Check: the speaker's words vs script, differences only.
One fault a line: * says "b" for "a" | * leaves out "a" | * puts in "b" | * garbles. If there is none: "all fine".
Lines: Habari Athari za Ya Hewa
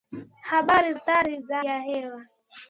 all fine